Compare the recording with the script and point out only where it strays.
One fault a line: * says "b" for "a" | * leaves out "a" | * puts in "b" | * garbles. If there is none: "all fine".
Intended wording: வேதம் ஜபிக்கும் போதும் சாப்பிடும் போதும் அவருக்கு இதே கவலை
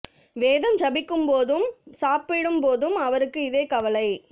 all fine